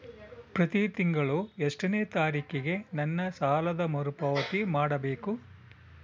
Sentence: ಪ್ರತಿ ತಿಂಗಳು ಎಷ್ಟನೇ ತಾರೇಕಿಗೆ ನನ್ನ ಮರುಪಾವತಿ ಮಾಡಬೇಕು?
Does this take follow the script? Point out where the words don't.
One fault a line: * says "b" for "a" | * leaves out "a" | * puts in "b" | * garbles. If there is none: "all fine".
* puts in "ಸಾಲದ"